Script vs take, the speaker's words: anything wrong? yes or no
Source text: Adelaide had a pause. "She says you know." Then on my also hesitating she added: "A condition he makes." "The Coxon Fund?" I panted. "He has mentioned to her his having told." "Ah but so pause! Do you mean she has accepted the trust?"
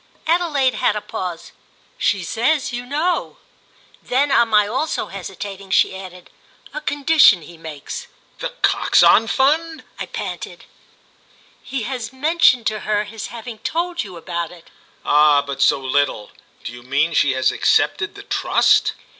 yes